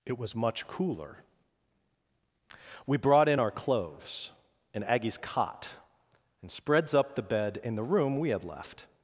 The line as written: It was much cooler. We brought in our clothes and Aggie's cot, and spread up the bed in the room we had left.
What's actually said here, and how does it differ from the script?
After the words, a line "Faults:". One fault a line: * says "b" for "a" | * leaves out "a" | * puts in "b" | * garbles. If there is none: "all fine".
It was much cooler. We brought in our clothes and Aggie's cot, and spreads up the bed in the room we had left.
Faults:
* says "spreads" for "spread"